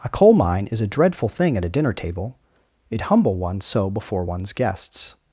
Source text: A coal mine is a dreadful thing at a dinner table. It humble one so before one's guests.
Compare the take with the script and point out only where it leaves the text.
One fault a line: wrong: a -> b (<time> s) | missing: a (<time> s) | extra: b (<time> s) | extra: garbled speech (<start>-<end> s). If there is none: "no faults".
no faults